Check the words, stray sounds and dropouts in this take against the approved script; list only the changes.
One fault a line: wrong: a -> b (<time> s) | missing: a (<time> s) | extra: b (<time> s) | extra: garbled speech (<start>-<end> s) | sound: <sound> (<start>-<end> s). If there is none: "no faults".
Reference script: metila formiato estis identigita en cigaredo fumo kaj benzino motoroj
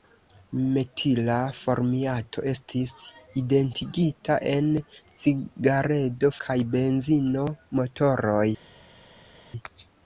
missing: fumo (6.3 s)